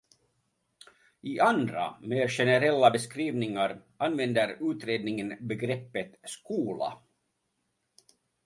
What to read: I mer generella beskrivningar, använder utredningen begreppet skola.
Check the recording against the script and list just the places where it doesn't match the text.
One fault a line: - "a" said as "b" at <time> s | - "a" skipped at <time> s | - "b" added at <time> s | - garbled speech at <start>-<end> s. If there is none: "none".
- "andra" added at 1.4 s